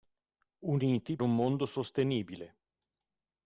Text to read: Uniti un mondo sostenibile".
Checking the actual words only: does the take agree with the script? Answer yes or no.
yes